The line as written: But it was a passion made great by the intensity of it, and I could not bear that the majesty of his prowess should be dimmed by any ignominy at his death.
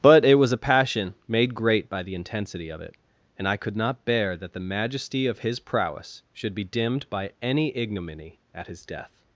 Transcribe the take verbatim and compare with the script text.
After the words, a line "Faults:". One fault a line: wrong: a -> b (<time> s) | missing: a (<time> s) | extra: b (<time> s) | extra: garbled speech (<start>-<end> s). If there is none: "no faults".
But it was a passion made great by the intensity of it, and I could not bear that the majesty of his prowess should be dimmed by any ignominy at his death.
Faults:
no faults